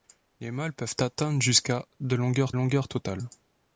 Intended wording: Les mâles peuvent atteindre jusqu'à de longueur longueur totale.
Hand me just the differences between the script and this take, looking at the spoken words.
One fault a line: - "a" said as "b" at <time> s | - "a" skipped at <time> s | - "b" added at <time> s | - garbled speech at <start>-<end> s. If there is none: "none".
none